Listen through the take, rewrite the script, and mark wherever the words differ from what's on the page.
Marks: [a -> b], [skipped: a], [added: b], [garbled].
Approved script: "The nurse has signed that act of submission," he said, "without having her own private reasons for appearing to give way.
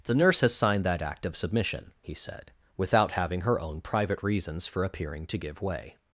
"The nurse has signed that act of submission," he said, "without having her own private reasons for appearing to give way.